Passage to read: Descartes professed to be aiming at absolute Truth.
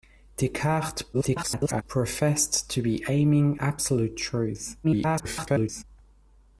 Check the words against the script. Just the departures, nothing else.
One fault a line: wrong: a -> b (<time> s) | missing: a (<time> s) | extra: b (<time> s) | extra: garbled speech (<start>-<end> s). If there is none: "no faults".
extra: garbled speech (1.1-1.8 s)
missing: at (3.6 s)
extra: garbled speech (4.8-5.8 s)